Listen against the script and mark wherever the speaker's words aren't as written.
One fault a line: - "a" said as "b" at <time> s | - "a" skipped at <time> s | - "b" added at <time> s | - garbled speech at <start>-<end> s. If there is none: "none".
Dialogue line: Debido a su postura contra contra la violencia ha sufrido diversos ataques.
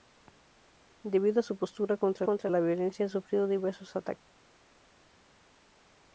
none